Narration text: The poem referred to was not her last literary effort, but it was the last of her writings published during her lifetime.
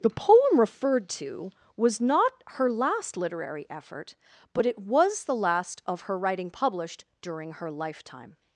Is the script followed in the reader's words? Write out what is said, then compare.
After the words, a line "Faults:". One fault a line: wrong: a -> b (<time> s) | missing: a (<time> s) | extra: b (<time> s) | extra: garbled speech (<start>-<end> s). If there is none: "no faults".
The poem referred to was not her last literary effort, but it was the last of her writing published during her lifetime.
Faults:
wrong: writings -> writing (6.2 s)